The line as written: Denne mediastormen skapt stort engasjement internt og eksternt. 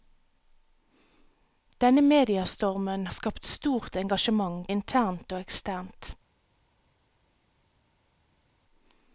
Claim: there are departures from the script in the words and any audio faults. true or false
false